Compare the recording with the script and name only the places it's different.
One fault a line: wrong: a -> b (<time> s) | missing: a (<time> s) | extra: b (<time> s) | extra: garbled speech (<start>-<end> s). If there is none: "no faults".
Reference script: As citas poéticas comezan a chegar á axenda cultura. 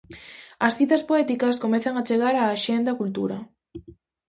no faults